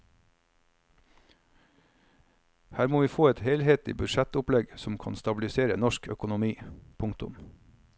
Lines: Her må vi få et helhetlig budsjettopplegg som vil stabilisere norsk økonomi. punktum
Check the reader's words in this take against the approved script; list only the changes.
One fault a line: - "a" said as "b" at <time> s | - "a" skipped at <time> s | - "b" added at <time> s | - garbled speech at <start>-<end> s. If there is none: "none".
- "vil" said as "kan" at 5.0 s